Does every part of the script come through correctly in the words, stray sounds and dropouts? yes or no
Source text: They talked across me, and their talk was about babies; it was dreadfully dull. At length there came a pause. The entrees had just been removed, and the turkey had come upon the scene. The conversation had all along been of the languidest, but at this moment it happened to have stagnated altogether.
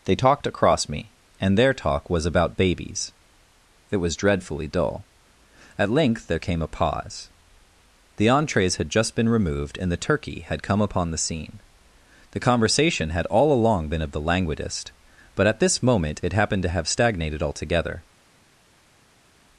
yes